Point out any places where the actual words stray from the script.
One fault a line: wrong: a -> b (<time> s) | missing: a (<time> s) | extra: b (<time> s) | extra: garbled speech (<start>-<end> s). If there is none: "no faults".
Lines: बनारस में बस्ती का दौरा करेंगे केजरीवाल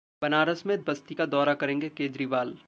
no faults